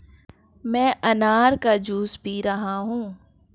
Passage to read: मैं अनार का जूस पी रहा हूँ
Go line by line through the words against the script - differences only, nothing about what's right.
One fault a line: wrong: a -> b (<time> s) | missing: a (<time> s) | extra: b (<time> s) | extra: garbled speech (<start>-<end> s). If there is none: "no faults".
no faults